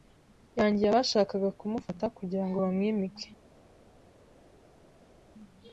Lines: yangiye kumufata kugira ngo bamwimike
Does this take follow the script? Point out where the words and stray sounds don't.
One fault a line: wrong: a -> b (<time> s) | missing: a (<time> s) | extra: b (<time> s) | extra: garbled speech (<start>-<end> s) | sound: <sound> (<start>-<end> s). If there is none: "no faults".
extra: abashakaga (0.9 s)